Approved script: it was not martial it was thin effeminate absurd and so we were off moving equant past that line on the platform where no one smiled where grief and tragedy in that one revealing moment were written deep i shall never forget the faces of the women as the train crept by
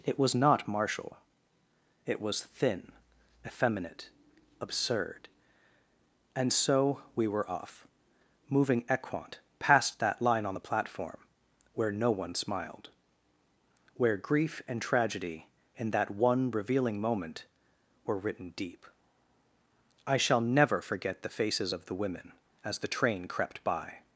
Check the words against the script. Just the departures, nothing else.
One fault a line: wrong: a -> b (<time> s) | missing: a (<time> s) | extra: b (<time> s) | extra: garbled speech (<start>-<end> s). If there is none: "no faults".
no faults